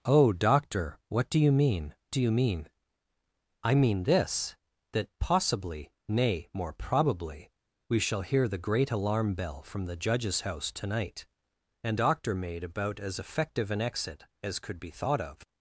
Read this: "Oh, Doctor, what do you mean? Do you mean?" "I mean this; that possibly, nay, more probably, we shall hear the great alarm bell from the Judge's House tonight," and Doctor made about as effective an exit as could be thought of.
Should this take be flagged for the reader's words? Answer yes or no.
no